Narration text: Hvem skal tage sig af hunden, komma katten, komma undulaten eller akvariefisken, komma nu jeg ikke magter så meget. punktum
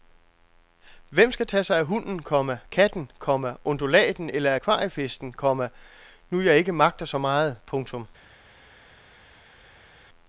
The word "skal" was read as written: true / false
true